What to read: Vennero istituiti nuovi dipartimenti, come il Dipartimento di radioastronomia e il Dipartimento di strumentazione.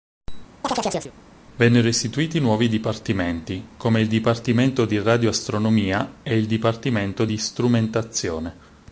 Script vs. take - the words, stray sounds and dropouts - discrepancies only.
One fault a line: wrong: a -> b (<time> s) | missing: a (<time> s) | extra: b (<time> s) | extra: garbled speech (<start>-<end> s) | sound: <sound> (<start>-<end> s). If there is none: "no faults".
sound: chirp (0.6-1.1 s)